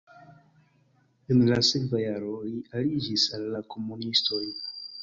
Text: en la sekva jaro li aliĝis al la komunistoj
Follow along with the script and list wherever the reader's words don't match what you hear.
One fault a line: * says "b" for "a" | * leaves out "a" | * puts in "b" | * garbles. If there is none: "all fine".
all fine